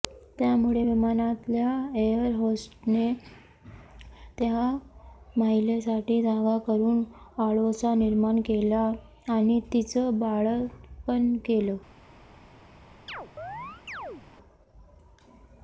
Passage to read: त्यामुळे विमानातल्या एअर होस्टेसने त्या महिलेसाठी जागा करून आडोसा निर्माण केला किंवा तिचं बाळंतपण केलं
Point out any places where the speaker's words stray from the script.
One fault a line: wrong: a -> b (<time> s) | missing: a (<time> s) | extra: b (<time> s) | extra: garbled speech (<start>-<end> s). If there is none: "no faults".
wrong: किंवा -> आणि (9.3 s)